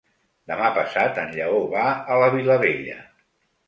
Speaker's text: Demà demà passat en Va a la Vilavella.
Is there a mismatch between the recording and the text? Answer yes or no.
yes